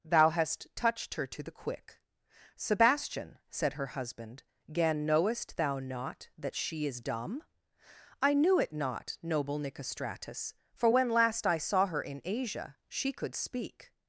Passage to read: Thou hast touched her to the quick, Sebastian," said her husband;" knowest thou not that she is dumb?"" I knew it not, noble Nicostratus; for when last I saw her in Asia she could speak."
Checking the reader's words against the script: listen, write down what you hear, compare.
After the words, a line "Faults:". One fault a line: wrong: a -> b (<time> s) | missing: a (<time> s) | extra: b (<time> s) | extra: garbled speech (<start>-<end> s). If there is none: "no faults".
Thou hast touched her to the quick, Sebastian," said her husband;" gan knowest thou not that she is dumb?"" I knew it not, noble Nicostratus; for when last I saw her in Asia she could speak."
Faults:
extra: gan (4.7 s)